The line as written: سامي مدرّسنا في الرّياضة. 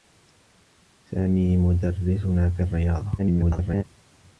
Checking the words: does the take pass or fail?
fail